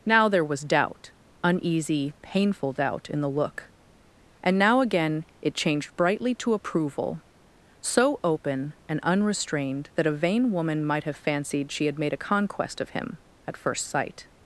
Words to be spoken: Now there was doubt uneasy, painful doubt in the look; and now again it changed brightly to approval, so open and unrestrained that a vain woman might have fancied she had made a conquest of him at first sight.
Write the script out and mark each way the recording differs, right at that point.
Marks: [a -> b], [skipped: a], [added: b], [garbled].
Now there was doubt uneasy, painful doubt in the look; and now again it changed brightly to approval, so open and unrestrained that a vain woman might have fancied she had made a conquest of him at first sight.